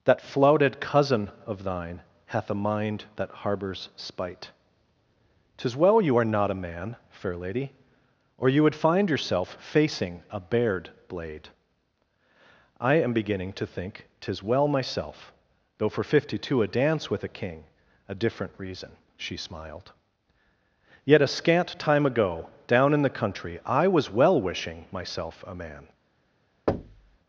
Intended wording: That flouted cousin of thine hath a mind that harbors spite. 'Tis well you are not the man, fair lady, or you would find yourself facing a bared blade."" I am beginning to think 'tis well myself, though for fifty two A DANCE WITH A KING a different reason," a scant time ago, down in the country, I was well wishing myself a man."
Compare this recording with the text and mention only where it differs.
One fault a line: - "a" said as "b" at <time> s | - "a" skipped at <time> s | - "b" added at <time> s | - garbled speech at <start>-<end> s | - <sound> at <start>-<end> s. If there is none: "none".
- "the" said as "a" at 6.5 s
- "she smiled Yet" added at 19.2 s
- thud at 26.7-27.2 s